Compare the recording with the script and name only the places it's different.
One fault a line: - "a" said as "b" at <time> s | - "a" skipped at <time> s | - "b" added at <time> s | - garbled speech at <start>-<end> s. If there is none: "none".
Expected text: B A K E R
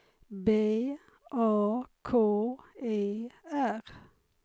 none